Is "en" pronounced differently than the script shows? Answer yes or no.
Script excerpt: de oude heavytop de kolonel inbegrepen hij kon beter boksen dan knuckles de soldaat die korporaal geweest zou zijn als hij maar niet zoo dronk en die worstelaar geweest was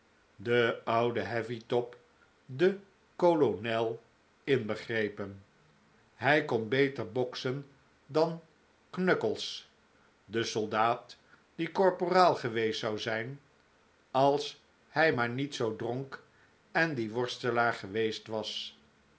no